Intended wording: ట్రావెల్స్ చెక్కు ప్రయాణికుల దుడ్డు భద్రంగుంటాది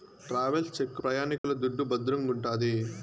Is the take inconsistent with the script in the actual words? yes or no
no